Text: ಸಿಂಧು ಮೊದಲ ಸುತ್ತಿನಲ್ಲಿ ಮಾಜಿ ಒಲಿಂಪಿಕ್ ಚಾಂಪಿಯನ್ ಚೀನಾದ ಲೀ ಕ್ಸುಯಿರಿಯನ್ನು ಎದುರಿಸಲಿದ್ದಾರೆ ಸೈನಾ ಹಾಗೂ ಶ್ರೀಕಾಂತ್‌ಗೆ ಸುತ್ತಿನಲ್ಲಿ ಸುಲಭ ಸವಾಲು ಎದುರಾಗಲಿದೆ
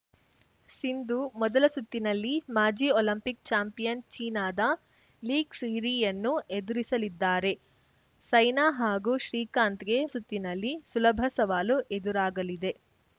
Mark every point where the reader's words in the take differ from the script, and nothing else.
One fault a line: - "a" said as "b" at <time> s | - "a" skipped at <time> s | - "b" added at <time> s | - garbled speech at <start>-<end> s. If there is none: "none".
none